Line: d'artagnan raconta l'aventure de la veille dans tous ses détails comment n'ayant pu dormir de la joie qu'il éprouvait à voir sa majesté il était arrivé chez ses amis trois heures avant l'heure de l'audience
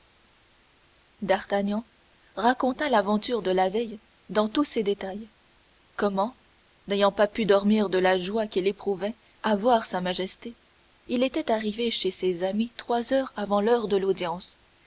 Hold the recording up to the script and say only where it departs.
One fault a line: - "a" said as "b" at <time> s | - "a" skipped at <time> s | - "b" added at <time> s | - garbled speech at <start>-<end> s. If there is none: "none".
- "pas" added at 7.1 s